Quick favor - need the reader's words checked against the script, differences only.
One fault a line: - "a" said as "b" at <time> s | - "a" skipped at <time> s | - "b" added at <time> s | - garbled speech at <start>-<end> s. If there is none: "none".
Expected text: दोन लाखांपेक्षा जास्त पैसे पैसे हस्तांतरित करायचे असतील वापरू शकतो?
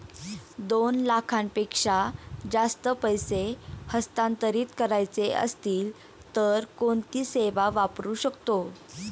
- "पैसे" skipped at 3.4 s
- "तर कोणती सेवा" added at 6.3 s